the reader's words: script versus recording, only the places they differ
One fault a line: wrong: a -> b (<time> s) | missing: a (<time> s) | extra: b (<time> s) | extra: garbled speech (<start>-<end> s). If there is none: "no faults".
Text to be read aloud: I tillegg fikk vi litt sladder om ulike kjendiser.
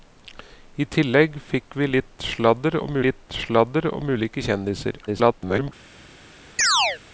extra: litt sladder om (3.0 s)
extra: garbled speech (5.1-5.7 s)